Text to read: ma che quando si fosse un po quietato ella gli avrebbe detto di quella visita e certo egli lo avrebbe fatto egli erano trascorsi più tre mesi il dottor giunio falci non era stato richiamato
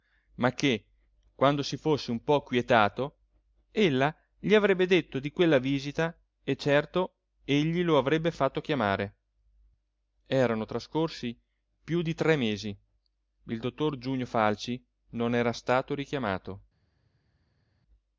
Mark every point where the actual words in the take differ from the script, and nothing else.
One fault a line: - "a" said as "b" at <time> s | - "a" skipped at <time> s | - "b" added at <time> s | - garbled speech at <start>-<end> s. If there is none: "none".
- "egli" said as "chiamare" at 8.6 s
- "di" added at 12.0 s